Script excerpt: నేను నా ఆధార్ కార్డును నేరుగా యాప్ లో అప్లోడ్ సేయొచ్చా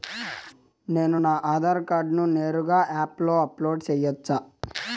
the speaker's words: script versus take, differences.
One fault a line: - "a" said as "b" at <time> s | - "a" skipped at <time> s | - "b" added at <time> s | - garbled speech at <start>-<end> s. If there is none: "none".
none